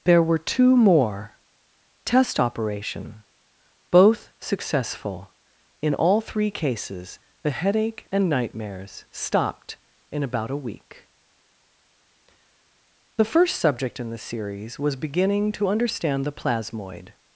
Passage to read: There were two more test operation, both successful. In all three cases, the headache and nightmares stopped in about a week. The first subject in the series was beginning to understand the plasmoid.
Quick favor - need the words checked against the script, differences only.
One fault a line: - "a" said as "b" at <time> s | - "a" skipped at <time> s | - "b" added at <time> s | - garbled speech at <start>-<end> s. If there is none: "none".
none